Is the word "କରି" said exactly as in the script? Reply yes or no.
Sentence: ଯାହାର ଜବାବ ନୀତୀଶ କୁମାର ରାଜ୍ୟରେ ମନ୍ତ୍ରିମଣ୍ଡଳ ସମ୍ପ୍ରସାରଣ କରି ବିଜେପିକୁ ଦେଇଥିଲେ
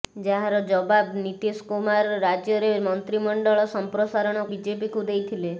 no